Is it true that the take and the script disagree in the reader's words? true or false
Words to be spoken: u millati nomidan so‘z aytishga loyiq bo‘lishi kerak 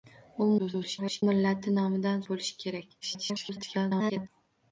true